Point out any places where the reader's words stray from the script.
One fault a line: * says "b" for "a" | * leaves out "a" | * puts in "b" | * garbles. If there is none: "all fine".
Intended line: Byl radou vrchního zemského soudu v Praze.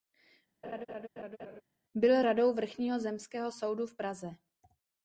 all fine